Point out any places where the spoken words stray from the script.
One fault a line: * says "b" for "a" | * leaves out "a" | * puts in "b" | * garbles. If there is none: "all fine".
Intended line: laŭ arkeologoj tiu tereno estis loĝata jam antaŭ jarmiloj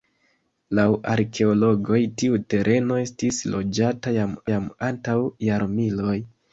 * puts in "jam"